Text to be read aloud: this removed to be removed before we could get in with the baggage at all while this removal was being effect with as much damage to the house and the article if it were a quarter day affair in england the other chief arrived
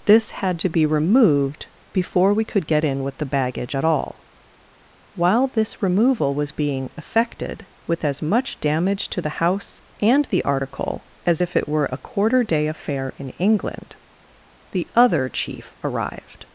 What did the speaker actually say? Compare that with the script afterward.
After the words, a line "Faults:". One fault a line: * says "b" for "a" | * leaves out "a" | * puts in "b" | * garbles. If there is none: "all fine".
this had to be removed before we could get in with the baggage at all while this removal was being effected with as much damage to the house and the article as if it were a quarter day affair in england the other chief arrived
Faults:
* says "had" for "removed"
* says "effected" for "effect"
* puts in "as"